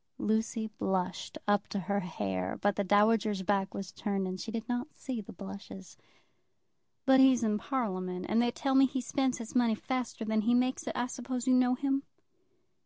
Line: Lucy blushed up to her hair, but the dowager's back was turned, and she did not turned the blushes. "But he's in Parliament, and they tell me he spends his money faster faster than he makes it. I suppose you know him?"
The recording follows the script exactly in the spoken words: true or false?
false